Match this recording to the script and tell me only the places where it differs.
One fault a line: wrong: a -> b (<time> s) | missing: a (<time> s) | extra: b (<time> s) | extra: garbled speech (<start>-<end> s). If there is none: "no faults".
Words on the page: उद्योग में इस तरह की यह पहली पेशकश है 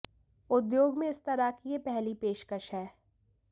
no faults